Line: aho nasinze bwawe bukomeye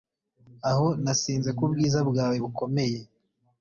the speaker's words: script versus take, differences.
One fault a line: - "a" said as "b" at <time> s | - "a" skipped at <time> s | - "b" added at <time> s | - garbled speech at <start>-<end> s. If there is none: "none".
- "kubwiza" added at 1.6 s